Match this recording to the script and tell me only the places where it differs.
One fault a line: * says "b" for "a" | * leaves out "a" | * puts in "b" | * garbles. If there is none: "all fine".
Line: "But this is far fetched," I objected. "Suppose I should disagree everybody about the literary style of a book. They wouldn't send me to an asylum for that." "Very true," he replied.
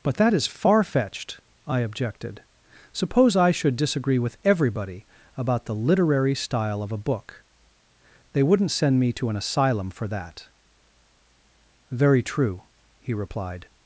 * says "that" for "this"
* puts in "with"